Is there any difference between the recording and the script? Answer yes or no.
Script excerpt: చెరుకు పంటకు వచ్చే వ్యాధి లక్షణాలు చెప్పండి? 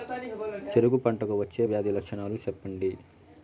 no